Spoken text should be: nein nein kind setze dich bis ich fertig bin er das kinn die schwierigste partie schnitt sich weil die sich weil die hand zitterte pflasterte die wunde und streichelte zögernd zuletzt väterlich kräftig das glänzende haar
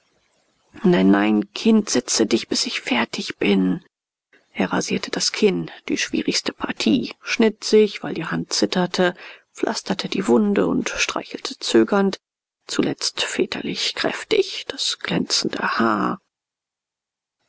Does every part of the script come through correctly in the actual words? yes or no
no